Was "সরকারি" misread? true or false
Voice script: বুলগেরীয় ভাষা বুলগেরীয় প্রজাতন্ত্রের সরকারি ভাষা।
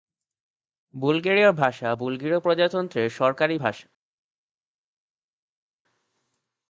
false